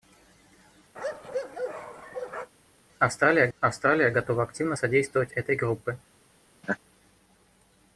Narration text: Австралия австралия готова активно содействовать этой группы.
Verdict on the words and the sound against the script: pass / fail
fail